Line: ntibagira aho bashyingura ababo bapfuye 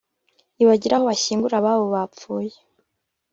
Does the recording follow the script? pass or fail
pass